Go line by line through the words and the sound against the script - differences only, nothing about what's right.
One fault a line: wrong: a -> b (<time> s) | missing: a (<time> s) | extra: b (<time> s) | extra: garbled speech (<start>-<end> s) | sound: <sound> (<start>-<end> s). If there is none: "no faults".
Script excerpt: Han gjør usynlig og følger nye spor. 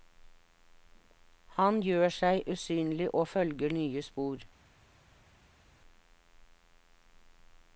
extra: seg (2.1 s)